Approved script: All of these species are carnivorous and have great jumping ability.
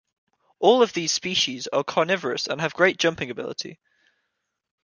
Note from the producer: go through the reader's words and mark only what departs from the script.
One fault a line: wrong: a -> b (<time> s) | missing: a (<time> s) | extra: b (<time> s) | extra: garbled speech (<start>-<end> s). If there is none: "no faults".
no faults